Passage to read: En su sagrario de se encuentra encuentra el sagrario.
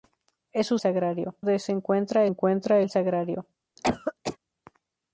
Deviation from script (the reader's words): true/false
false